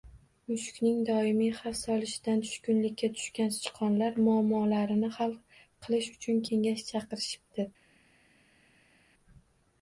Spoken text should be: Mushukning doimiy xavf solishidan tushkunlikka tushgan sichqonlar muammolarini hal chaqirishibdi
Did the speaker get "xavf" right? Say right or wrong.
right